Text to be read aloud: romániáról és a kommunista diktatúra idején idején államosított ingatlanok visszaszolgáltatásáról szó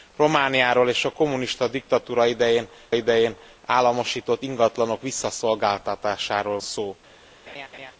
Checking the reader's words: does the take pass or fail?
pass